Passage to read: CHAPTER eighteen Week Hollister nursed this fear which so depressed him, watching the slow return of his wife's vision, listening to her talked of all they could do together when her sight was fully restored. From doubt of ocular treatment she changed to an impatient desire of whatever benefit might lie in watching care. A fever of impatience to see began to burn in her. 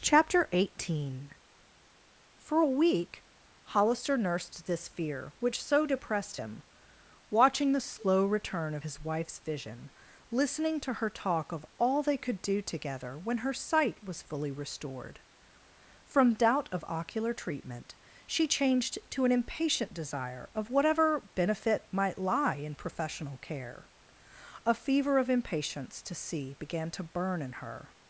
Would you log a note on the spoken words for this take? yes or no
yes